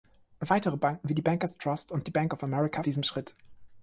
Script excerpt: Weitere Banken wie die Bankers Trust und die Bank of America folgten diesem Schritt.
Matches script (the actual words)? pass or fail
fail